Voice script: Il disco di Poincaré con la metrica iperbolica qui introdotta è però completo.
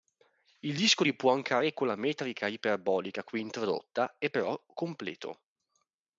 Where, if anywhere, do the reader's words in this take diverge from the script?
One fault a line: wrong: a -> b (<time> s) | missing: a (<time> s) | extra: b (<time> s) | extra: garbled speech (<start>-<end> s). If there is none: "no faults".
no faults